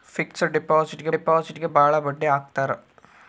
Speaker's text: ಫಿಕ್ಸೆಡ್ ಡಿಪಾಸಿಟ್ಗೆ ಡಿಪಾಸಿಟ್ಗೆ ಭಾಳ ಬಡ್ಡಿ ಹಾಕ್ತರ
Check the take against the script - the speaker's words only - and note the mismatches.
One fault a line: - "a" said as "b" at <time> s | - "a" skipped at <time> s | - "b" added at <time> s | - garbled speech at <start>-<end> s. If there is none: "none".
none